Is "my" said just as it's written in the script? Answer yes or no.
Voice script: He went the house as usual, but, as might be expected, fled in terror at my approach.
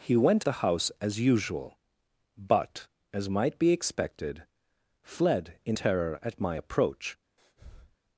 yes